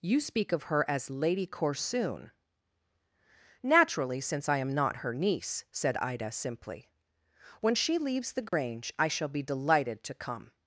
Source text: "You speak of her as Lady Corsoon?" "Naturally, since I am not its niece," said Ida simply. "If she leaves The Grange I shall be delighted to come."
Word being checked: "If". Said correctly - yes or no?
no